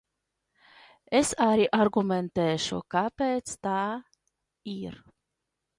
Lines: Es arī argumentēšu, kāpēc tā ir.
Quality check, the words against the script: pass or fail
pass